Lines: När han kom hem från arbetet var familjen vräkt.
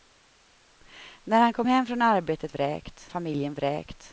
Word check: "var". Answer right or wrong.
wrong